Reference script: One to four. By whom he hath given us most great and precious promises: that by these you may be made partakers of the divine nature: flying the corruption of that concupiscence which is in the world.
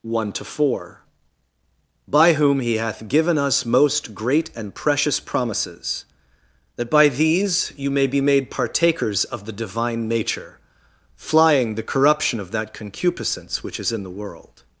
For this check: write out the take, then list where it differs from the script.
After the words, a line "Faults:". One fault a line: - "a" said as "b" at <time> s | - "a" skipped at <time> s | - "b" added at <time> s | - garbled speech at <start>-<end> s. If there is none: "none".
One to four. By whom he hath given us most great and precious promises: that by these you may be made partakers of the divine nature: flying the corruption of that concupiscence which is in the world.
Faults:
none